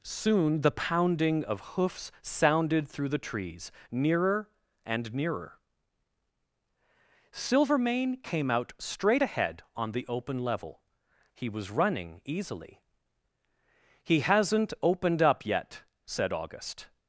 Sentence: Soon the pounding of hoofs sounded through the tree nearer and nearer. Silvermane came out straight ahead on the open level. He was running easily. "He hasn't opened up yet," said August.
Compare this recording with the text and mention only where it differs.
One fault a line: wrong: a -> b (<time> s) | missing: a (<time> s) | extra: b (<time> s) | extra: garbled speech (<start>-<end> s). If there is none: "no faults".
wrong: tree -> trees (3.2 s)